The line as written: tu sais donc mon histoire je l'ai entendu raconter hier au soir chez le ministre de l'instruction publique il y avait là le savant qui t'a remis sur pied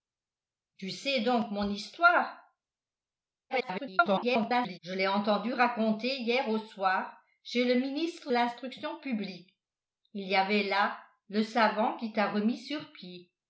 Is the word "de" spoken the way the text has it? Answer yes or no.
no